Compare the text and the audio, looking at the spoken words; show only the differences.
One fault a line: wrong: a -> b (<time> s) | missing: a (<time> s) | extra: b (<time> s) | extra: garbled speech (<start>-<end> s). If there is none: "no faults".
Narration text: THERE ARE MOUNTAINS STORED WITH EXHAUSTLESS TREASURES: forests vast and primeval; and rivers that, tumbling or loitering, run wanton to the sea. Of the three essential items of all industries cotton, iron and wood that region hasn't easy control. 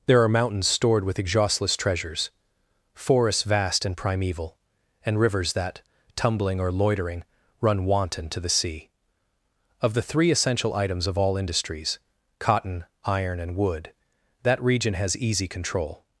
wrong: hasn't -> has (14.9 s)